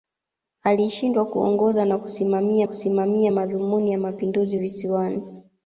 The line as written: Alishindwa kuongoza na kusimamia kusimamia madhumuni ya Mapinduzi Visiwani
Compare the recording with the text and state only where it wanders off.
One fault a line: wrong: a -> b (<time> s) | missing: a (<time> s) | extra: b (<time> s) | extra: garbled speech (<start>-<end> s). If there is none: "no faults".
no faults